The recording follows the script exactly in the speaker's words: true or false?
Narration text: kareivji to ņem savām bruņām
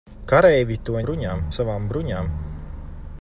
false